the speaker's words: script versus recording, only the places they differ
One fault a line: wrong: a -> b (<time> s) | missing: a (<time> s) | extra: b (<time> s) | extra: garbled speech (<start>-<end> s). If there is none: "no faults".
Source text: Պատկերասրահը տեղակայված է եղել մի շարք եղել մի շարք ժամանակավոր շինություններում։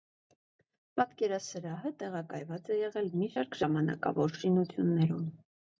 missing: եղել մի շարք (3.6 s)